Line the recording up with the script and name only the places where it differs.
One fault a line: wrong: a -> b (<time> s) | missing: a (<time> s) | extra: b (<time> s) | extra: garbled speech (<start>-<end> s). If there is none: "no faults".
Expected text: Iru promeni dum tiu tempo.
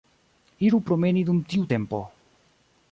no faults